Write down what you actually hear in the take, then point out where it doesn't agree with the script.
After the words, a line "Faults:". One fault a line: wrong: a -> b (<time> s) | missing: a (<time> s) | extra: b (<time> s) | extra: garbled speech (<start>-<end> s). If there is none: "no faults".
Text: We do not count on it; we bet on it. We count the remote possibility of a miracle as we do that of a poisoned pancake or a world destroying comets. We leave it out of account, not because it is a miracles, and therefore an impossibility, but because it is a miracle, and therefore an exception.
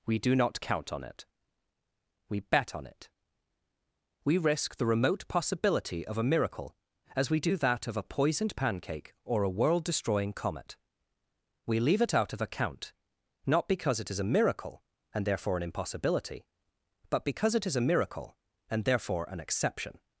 We do not count on it; we bet on it. We risk the remote possibility of a miracle as we do that of a poisoned pancake or a world destroying comet. We leave it out of account, not because it is a miracle, and therefore an impossibility, but because it is a miracle, and therefore an exception.
Faults:
wrong: count -> risk (4.4 s)
wrong: comets -> comet (10.3 s)
wrong: miracles -> miracle (14.3 s)